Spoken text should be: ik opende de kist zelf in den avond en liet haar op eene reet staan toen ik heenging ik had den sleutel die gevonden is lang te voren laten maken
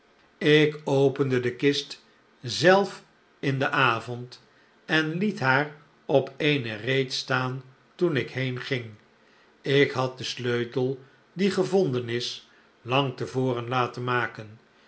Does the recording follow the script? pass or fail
pass